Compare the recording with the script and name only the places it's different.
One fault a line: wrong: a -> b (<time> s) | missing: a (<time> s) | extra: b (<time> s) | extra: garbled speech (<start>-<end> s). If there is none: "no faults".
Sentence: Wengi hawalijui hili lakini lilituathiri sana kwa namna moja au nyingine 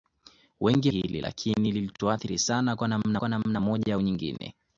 missing: hawalijui (0.9 s)
extra: kwa namna (3.2 s)